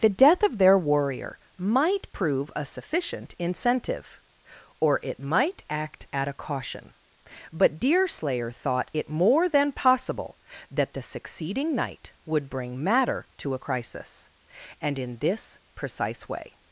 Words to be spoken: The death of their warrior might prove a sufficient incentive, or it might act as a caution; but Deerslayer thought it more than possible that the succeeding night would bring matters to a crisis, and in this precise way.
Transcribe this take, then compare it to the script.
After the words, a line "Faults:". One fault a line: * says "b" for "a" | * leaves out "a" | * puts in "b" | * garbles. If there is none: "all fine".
The death of their warrior might prove a sufficient incentive, or it might act at a caution; but Deerslayer thought it more than possible that the succeeding night would bring matter to a crisis, and in this precise way.
Faults:
* says "at" for "as"
* says "matter" for "matters"